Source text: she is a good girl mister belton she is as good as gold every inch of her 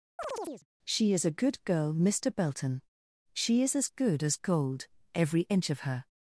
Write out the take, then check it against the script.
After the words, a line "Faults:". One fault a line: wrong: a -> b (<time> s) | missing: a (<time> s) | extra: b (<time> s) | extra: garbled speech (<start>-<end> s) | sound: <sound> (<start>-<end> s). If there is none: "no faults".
she is a good girl mister belton she is as good as gold every inch of her
Faults:
sound: chirp (0.2-0.7 s)